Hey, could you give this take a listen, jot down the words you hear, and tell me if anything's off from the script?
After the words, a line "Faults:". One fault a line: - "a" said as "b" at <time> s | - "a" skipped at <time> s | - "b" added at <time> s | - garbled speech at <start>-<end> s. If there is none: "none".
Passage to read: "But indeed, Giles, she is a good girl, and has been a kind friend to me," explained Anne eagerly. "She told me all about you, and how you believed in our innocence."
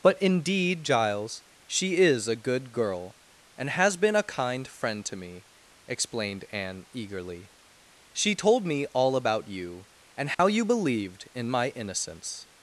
"But indeed, Giles, she is a good girl, and has been a kind friend to me," explained Anne eagerly. "She told me all about you, and how you believed in my innocence."
Faults:
- "our" said as "my" at 11.5 s